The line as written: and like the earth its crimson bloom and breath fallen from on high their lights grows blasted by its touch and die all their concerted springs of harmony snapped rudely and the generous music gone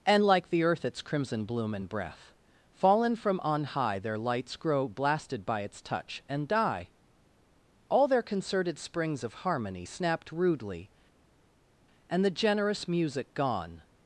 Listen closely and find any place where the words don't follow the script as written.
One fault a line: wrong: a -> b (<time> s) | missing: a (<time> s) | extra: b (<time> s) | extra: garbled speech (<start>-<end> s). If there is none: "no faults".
wrong: grows -> grow (4.5 s)